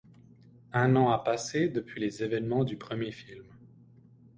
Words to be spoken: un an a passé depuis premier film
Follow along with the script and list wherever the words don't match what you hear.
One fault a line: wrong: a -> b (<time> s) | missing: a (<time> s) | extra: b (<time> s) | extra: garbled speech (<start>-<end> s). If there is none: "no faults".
extra: les événements du (2.0 s)